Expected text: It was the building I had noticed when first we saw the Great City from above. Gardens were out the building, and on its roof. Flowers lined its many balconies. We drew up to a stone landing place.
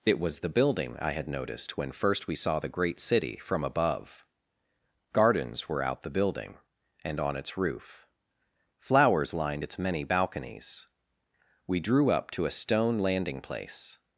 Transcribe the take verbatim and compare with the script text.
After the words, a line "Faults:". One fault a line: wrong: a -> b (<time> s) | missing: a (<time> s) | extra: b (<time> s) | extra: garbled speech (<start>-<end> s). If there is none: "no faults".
It was the building I had noticed when first we saw the Great City from above. Gardens were out the building, and on its roof. Flowers lined its many balconies. We drew up to a stone landing place.
Faults:
no faults